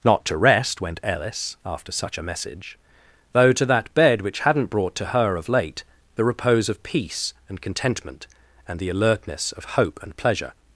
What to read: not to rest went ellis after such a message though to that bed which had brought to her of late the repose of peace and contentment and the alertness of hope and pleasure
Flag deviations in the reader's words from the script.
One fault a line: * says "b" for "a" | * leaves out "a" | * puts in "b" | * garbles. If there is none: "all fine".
* says "hadn't" for "had"